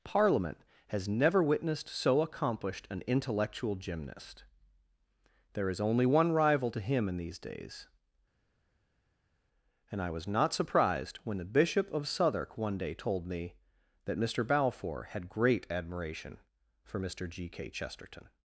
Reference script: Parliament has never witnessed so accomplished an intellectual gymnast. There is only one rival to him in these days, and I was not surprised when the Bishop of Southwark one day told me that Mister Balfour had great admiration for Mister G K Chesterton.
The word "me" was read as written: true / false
true